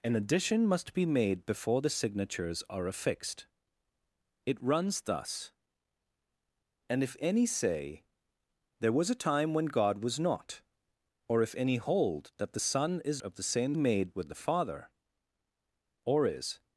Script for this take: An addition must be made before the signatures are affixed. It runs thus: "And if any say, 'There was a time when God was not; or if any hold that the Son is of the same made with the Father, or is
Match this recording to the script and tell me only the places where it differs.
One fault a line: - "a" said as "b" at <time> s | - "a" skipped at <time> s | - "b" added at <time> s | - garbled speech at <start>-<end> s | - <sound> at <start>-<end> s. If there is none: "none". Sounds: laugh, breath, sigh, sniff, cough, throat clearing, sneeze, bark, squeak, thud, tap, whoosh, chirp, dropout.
none